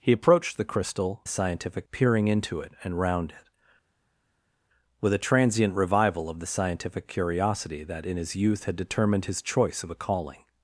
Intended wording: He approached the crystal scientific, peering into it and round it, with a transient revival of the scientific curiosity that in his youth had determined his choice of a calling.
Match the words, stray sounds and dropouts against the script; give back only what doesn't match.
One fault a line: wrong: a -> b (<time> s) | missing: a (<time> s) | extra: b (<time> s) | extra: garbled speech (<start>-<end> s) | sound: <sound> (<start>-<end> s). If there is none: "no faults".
no faults